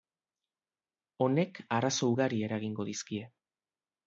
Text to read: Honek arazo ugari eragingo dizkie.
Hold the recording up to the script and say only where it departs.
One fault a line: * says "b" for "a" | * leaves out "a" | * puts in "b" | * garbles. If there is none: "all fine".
all fine